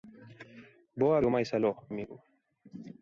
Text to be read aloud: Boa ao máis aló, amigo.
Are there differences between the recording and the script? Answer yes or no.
no